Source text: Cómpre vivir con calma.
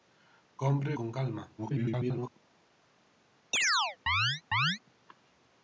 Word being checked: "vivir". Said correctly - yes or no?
no